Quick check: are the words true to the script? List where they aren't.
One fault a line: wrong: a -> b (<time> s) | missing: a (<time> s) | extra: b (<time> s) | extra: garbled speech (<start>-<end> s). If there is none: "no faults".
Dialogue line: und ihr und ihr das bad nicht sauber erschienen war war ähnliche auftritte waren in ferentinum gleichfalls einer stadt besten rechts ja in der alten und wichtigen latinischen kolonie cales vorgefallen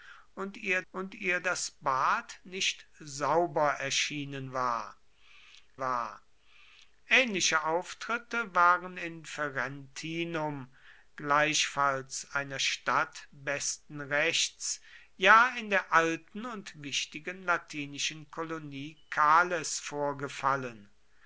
no faults